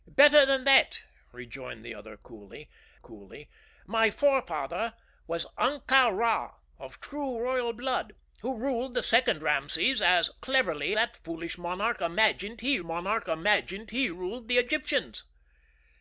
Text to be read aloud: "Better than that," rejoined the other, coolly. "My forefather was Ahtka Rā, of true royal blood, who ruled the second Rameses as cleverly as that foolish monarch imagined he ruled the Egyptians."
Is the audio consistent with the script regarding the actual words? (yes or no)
no